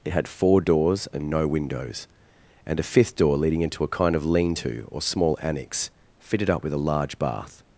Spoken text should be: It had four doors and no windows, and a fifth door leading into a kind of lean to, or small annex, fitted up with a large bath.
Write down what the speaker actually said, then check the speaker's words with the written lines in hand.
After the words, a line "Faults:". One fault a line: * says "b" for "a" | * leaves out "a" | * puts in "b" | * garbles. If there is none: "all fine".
It had four doors and no windows, and a fifth door leading into a kind of lean to, or small annex, fitted up with a large bath.
Faults:
all fine